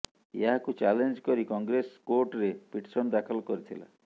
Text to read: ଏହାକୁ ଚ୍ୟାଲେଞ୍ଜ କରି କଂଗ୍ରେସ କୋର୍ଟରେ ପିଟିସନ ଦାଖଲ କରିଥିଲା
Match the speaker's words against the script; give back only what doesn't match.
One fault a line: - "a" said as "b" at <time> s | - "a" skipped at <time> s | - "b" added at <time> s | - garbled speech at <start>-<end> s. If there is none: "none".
none